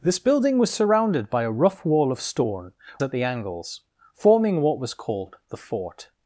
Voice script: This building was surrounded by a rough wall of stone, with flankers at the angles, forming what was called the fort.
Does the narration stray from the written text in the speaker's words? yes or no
yes